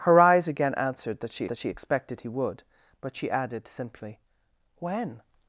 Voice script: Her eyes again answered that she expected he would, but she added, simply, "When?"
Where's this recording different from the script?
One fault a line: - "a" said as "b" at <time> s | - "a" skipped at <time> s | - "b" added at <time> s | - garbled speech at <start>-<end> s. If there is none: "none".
- "that she" added at 1.5 s